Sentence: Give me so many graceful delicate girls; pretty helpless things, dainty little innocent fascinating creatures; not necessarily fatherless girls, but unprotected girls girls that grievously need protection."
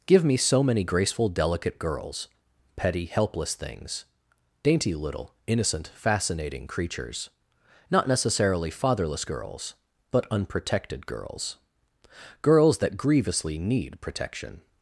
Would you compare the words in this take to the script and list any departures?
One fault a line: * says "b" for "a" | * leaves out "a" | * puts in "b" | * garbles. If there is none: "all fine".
* says "petty" for "pretty"